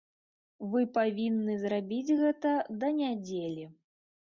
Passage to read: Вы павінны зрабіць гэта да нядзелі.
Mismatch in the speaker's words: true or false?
false